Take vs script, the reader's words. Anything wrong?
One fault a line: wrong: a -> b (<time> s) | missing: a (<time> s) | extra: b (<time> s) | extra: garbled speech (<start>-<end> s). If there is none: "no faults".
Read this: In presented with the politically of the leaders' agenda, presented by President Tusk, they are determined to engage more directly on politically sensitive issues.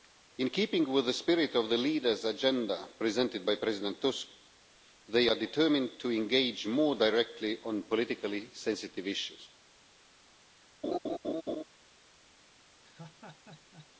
wrong: presented -> keeping (0.5 s)
wrong: politically -> spirit (1.1 s)